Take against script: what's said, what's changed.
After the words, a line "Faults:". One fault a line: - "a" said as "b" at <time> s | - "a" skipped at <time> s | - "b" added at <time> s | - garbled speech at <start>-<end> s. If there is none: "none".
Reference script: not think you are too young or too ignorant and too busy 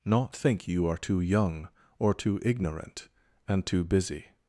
not think you are too young or too ignorant and too busy
Faults:
none